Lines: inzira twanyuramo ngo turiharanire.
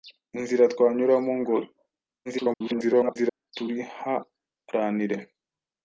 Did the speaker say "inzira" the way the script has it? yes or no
yes